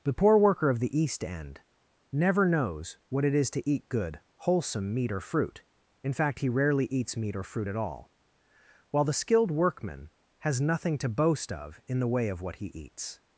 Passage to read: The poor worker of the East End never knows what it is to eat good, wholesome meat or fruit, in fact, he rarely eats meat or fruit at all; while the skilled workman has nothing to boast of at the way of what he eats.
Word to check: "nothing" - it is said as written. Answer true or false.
true